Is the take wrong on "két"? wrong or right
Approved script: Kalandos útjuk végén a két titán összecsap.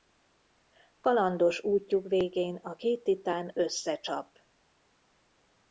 right